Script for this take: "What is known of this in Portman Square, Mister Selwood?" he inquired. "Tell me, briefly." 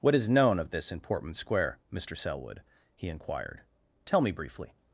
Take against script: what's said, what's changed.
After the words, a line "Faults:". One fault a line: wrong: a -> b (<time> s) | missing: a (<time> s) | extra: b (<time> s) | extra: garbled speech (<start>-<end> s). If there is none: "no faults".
"What is known of this in Portman Square, Mister Selwood?" he inquired. "Tell me, briefly."
Faults:
no faults